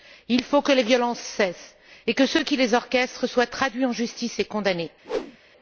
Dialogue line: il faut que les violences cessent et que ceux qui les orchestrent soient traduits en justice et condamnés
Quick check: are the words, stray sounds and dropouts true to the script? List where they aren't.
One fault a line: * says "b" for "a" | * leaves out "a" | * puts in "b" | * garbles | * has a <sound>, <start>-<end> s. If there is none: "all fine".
* has a whoosh, 5.0-5.4 s